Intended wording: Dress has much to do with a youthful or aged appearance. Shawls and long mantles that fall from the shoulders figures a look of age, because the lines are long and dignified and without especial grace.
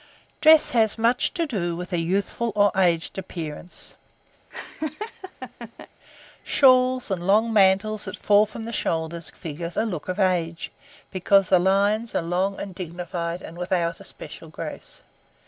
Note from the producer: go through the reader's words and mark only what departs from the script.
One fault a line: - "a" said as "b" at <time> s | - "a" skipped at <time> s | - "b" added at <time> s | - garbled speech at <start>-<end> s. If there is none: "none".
none